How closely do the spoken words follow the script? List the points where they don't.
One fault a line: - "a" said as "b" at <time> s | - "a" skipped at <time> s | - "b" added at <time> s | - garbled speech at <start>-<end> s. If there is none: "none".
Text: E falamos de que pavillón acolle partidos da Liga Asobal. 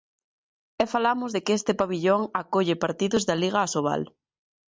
- "este" added at 1.6 s